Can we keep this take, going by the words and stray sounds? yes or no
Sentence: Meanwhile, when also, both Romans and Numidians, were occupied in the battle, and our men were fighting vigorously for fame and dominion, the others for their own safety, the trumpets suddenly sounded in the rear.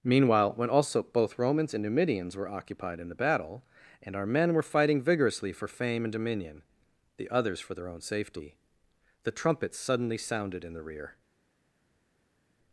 yes